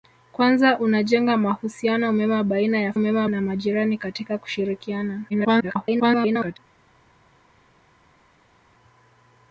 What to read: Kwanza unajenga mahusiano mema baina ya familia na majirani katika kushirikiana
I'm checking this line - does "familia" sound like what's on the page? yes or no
no